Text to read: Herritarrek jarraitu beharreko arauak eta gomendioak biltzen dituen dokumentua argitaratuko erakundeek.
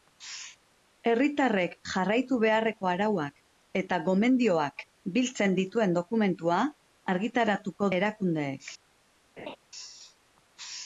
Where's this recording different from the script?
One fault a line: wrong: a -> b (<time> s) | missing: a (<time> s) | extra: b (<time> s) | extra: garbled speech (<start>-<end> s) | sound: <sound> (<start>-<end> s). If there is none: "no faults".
sound: laugh (9.4-9.6 s)